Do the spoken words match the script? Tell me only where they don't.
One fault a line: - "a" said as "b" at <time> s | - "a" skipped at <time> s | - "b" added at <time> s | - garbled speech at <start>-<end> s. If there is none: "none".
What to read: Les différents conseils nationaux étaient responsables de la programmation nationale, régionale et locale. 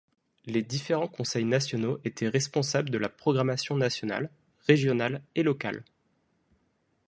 none